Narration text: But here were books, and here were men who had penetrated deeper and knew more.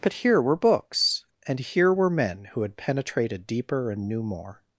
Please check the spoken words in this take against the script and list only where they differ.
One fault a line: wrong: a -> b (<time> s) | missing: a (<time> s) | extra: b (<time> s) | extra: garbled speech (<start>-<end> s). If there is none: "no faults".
no faults